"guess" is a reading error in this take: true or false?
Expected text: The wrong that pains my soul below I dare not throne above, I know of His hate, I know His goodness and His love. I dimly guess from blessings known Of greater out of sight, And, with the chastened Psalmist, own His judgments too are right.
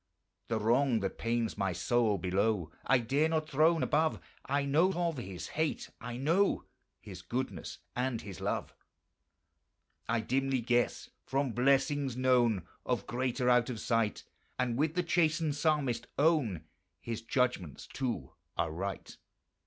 false